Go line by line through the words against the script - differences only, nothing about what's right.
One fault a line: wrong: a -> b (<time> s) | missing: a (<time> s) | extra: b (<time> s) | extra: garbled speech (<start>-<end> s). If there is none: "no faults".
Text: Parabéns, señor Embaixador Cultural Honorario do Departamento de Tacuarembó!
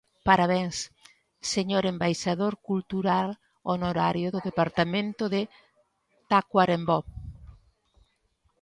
no faults